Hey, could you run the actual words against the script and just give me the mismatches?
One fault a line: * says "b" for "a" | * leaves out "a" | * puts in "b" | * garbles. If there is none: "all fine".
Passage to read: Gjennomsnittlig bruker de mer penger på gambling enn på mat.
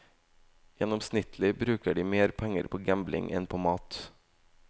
all fine